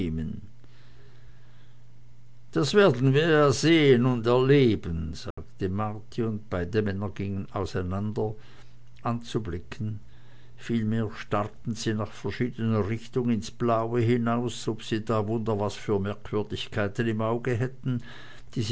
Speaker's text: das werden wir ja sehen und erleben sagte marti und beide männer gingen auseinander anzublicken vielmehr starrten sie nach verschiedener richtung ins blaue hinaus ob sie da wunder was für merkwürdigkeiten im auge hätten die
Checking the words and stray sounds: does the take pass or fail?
fail